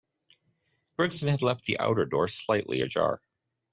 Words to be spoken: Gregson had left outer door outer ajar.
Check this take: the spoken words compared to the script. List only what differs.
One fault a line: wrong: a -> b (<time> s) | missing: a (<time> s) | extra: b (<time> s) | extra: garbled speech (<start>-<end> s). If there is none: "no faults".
extra: the (1.6 s)
wrong: outer -> slightly (2.3 s)